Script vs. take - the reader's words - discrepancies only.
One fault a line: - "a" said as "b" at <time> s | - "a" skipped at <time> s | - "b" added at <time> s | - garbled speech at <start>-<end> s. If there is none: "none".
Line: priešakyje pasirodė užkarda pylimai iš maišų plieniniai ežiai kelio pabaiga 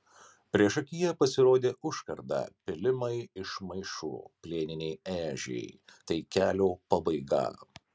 - "tai" added at 6.1 s